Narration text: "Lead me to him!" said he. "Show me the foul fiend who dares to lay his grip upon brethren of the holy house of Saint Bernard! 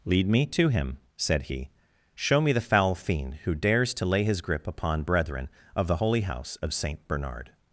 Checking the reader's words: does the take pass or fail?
pass